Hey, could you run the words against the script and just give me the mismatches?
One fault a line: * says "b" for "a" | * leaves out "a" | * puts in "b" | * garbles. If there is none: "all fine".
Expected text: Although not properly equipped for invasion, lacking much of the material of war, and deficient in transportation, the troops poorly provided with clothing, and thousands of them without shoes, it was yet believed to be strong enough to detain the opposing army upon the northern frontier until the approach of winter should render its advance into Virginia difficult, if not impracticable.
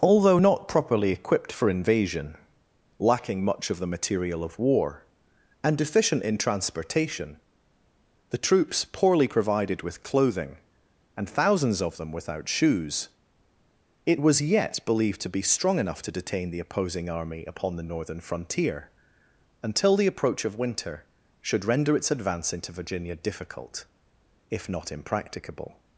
all fine